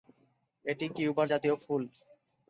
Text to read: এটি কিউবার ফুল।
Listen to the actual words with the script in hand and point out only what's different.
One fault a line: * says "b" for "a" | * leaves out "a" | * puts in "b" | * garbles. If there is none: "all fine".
* puts in "জাতীয়"